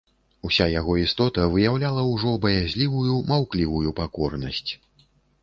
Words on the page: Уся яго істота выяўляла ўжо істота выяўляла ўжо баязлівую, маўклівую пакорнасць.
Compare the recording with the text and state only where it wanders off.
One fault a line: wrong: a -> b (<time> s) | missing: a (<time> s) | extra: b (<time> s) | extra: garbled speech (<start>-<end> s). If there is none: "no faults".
missing: істота выяўляла ўжо (2.3 s)